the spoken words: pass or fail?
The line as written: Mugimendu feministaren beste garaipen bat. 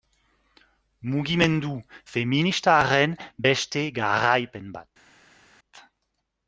pass